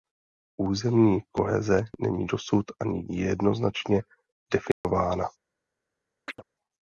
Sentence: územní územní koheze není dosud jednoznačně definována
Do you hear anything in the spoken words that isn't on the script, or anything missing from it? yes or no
yes